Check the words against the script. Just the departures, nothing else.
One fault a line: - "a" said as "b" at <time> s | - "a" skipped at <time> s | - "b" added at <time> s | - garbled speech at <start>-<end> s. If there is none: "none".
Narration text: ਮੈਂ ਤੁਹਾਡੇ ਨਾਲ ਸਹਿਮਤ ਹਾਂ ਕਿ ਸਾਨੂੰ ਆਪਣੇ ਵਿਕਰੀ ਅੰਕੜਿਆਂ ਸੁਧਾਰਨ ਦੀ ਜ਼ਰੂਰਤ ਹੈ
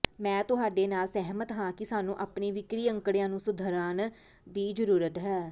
- "ਨੂੰ" added at 3.3 s